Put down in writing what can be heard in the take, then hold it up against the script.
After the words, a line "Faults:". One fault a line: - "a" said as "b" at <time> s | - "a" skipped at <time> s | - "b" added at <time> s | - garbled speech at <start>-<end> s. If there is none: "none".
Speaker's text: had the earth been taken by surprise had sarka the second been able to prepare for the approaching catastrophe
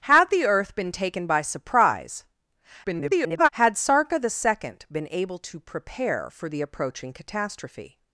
had the earth been taken by surprise [garbled] had sarka the second been able to prepare for the approaching catastrophe
Faults:
- garbled speech at 2.8-3.5 s